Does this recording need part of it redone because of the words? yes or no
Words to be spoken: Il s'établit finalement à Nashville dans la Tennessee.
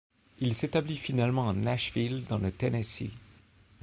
yes